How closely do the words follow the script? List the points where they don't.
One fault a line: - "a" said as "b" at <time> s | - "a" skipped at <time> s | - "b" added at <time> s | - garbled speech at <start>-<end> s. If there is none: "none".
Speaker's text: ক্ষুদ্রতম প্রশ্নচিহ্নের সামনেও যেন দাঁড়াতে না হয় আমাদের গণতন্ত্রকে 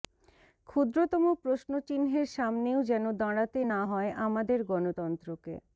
none